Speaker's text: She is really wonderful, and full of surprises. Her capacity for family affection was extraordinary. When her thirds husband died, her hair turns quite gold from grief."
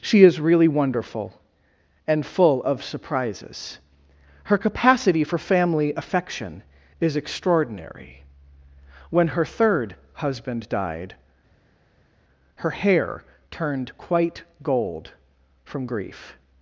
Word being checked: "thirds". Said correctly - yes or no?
no